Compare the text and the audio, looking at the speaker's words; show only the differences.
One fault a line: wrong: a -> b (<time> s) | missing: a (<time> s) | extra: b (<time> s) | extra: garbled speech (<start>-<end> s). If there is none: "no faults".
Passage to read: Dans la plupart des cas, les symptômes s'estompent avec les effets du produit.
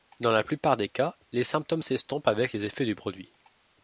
no faults